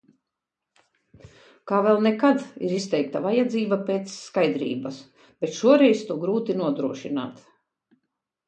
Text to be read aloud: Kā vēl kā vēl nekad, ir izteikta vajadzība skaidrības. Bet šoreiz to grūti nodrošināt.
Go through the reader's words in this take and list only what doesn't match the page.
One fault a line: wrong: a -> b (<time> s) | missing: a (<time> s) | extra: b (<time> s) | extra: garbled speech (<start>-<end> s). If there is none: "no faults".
missing: kā vēl (2.0 s)
extra: pēc (3.9 s)